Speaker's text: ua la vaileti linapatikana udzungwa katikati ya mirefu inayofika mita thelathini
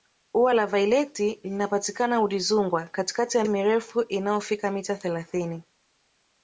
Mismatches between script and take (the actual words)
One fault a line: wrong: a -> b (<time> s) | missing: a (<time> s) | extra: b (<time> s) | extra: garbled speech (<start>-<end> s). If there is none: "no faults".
no faults